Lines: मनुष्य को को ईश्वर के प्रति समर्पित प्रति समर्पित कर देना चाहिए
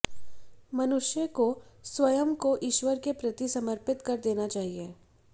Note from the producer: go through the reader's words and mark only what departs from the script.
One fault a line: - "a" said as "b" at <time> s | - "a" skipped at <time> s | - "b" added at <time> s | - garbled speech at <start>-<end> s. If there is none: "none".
- "स्वयं" added at 1.9 s
- "प्रति समर्पित" skipped at 4.0 s